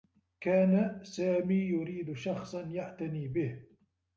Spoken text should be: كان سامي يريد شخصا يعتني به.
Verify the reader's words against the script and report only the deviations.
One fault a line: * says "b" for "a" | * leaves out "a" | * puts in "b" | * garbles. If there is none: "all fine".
all fine